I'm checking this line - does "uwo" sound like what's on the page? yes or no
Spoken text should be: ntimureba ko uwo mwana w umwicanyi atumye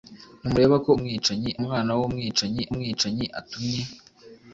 no